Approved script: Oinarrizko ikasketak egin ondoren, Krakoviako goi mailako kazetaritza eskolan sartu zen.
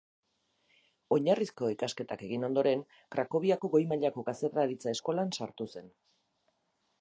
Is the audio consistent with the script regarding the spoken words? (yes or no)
yes